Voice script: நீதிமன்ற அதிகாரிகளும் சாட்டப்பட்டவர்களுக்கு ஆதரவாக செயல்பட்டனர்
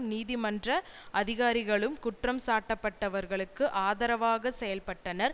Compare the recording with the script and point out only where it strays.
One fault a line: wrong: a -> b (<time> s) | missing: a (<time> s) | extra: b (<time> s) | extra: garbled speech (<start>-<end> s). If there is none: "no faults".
extra: குற்றம் (2.0 s)